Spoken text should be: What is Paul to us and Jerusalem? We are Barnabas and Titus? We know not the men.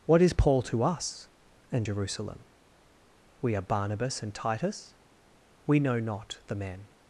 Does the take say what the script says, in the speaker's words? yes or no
yes